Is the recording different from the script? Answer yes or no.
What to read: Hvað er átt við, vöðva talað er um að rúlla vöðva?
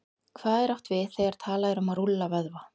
yes